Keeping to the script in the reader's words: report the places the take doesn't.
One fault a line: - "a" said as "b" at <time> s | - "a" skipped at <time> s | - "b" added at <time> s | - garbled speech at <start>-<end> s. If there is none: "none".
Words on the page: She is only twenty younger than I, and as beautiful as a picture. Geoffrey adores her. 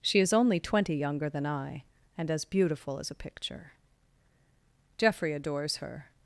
none